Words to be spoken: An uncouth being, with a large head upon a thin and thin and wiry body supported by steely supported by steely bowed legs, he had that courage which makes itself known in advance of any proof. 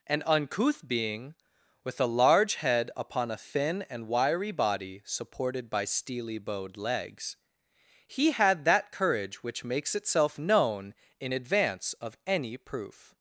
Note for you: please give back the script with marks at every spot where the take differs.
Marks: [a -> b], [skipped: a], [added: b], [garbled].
An uncouth being, with a large head upon a thin and [skipped: thin and] wiry body supported by steely [skipped: supported by steely] bowed legs, he had that courage which makes itself known in advance of any proof.